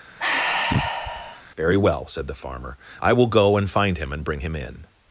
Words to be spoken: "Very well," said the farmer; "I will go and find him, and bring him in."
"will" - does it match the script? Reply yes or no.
yes